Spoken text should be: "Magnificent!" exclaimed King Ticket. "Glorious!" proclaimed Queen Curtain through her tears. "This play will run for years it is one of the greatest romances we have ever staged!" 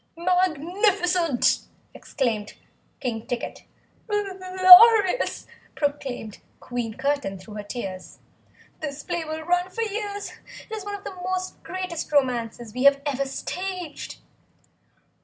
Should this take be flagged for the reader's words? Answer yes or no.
no